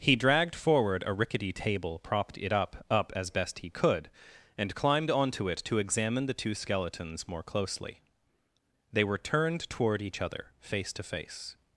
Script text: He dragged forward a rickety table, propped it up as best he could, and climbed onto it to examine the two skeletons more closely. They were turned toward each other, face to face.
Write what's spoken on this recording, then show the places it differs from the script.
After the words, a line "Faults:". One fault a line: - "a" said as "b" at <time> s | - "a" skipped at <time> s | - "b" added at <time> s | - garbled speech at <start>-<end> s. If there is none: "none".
He dragged forward a rickety table, propped it up up as best he could, and climbed onto it to examine the two skeletons more closely. They were turned toward each other, face to face.
Faults:
- "up" added at 2.9 s